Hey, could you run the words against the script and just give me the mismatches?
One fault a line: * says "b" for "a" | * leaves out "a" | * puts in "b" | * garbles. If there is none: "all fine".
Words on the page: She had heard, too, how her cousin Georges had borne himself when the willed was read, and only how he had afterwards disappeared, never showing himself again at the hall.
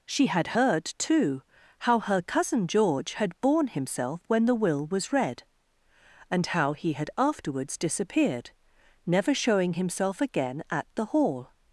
* says "George" for "Georges"
* says "will" for "willed"
* leaves out "only"